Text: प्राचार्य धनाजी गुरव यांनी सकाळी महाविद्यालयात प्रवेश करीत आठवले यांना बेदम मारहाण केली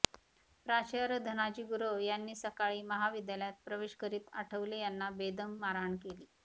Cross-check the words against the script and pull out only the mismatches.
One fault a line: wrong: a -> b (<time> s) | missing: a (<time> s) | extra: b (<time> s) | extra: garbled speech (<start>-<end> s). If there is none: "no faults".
no faults